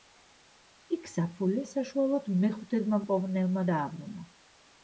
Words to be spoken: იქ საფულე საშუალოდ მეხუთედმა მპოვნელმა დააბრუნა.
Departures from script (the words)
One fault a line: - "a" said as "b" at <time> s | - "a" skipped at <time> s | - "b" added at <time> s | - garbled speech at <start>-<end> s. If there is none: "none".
none